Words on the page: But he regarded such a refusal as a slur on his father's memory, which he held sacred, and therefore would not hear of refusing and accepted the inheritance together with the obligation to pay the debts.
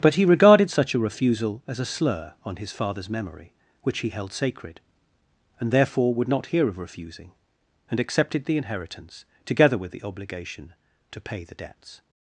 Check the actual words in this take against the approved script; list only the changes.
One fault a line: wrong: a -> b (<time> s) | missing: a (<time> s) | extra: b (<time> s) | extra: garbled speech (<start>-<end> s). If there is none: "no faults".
no faults